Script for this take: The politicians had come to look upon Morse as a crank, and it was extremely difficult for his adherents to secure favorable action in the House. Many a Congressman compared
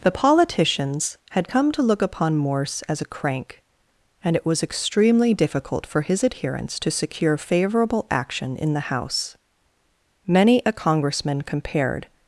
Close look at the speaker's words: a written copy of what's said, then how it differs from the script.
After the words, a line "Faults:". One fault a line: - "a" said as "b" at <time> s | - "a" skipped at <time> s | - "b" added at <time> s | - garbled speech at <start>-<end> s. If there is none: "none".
The politicians had come to look upon Morse as a crank, and it was extremely difficult for his adherents to secure favorable action in the House. Many a Congressman compared
Faults:
none